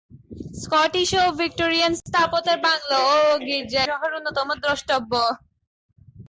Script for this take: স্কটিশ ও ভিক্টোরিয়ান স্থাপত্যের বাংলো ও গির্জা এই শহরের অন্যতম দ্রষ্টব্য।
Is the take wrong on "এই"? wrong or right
wrong